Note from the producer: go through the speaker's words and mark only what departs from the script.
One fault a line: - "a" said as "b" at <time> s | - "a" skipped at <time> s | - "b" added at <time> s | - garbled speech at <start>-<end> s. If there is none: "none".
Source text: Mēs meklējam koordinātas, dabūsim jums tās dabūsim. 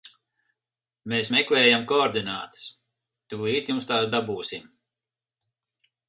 - "dabūsim" said as "tūlīt" at 3.3 s